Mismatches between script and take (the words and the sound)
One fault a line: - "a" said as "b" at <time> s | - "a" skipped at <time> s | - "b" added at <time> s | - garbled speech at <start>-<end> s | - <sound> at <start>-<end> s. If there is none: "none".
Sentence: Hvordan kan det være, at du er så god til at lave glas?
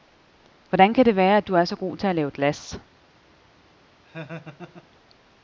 - laugh at 4.0-4.9 s